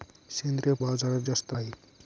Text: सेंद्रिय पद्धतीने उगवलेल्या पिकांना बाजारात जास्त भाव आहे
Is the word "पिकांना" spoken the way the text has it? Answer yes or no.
no